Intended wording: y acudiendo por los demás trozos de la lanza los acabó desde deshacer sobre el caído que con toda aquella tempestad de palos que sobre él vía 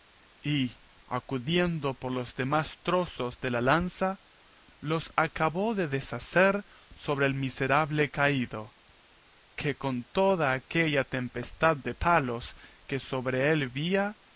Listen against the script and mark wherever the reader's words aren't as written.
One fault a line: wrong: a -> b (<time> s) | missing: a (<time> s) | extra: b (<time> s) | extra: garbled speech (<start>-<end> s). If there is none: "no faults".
wrong: desde -> de (5.7 s)
extra: miserable (7.3 s)